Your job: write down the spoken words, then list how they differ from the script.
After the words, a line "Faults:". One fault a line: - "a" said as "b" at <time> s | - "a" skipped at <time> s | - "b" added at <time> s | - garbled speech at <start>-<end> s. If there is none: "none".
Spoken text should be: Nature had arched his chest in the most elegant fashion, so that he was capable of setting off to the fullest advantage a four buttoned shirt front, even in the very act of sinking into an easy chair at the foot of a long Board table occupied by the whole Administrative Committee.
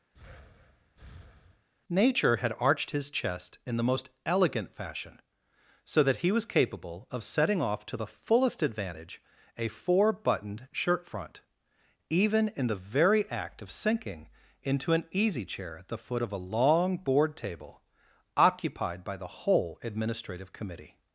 Nature had arched his chest in the most elegant fashion, so that he was capable of setting off to the fullest advantage a four buttoned shirt front, even in the very act of sinking into an easy chair at the foot of a long Board table occupied by the whole Administrative Committee.
Faults:
none